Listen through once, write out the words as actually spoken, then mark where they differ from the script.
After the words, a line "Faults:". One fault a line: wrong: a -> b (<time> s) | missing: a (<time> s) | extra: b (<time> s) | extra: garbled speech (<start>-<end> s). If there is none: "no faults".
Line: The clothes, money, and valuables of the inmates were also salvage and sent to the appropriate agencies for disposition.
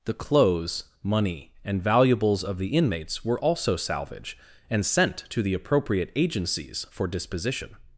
The clothes, money, and valuables of the inmates were also salvage and sent to the appropriate agencies for disposition.
Faults:
no faults